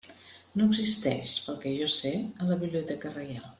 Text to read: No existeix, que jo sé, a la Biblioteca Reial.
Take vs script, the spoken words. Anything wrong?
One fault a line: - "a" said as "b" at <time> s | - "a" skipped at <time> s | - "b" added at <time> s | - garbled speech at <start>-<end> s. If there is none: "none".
- "pel" added at 1.5 s